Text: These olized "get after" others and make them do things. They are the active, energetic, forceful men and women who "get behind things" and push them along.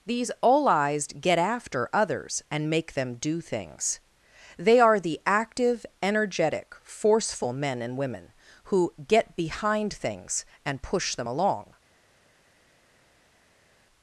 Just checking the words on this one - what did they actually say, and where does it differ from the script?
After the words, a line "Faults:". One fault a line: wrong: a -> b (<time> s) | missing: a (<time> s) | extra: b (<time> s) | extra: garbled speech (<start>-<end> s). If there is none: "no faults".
These olized "get after" others and make them do things. They are the active, energetic, forceful men and women who "get behind things" and push them along.
Faults:
no faults